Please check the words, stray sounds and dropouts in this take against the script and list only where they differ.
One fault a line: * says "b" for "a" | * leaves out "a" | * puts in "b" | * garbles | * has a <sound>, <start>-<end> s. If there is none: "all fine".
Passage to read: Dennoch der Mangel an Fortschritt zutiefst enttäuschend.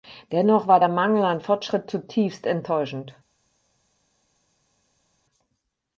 * puts in "war"